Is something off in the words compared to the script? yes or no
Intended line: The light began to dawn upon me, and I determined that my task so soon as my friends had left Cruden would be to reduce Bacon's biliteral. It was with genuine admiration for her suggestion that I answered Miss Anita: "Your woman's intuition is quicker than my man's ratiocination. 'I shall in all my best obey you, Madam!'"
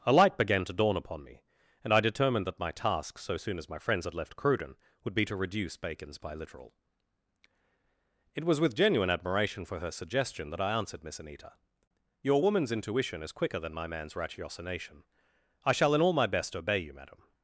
yes